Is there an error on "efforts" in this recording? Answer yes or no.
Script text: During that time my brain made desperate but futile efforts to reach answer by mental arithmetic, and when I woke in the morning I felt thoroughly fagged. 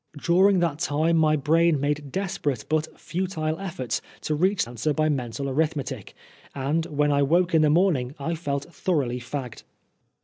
no